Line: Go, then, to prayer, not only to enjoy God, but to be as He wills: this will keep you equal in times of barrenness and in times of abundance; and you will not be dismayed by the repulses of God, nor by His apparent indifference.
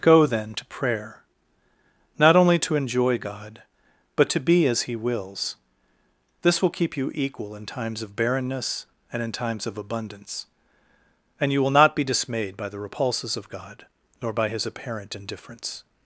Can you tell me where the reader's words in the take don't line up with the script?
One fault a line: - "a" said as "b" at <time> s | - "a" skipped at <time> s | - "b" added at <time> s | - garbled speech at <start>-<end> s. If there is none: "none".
none